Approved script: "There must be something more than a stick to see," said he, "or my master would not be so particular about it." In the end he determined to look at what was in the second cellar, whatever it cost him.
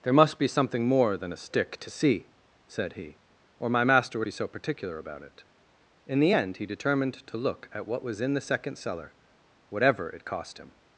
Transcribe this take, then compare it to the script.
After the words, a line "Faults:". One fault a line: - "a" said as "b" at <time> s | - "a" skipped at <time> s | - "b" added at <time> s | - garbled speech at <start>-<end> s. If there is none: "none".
"There must be something more than a stick to see," said he, "or my master would be so particular about it." In the end he determined to look at what was in the second cellar, whatever it cost him.
Faults:
- "not" skipped at 4.3 s